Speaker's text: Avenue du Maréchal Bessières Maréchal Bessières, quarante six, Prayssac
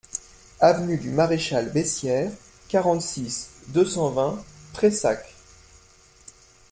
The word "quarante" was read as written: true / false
false